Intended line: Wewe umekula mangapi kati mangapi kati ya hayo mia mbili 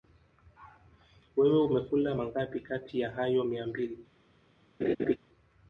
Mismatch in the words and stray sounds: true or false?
true